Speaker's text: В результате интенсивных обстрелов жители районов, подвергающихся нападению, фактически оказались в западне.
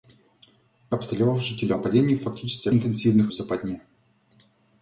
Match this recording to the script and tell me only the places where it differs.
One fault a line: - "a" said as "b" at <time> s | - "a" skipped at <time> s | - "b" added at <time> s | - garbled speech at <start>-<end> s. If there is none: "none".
- "результате интенсивных" skipped at 0.9 s
- "районов подвергающихся" skipped at 1.7 s
- "оказались" said as "интенсивных" at 2.7 s